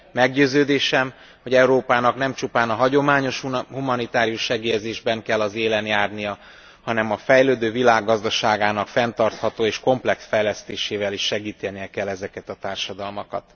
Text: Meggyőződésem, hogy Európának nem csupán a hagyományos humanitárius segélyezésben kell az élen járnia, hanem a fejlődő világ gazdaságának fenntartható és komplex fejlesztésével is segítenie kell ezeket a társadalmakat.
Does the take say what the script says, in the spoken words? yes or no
yes